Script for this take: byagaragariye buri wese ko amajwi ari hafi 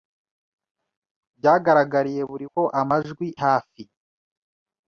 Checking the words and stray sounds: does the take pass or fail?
fail